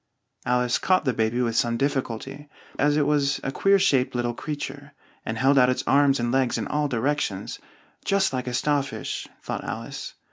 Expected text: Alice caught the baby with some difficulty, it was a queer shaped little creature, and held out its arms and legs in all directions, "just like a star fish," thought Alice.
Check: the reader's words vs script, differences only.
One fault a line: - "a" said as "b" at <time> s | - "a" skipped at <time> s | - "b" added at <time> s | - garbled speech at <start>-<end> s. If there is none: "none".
- "as" added at 2.8 s